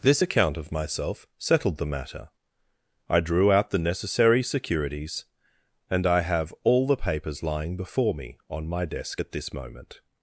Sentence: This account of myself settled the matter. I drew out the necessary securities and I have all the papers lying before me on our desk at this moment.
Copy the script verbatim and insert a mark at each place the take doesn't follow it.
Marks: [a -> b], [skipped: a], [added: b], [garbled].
This account of myself settled the matter. I drew out the necessary securities and I have all the papers lying before me on [our -> my] desk at this moment.